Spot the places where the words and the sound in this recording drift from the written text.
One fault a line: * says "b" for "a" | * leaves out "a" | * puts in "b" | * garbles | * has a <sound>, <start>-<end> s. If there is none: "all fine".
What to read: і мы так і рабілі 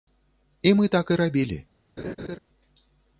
* has a laugh, 2.0-2.4 s